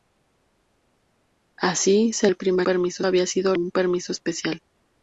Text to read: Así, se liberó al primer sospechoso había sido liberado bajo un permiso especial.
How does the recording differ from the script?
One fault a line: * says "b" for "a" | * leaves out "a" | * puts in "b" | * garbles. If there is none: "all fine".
* leaves out "liberó"
* says "permiso" for "sospechoso"
* leaves out "liberado bajo"